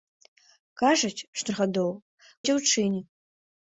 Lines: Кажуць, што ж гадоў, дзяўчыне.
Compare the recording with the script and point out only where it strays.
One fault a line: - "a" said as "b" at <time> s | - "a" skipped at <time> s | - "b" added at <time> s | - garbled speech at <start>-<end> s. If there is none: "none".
none